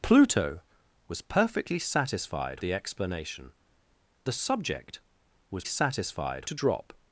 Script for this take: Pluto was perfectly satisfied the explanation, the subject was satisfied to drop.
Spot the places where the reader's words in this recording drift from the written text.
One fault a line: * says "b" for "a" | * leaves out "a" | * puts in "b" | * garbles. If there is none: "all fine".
all fine